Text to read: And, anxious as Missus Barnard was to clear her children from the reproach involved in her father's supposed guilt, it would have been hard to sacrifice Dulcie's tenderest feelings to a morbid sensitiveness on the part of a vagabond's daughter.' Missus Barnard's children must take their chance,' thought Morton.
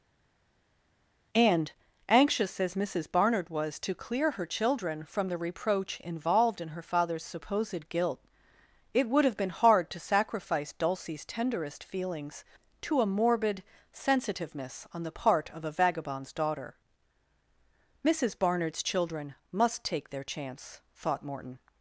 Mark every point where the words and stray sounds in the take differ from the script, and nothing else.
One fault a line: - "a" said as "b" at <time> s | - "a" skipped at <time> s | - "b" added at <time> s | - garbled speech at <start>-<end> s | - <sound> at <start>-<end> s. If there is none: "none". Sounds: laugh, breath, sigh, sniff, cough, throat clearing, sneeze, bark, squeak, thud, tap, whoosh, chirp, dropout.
none